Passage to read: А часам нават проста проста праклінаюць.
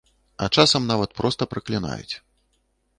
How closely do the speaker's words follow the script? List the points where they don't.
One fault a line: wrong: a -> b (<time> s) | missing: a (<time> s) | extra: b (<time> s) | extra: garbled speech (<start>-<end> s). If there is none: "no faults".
missing: проста (1.5 s)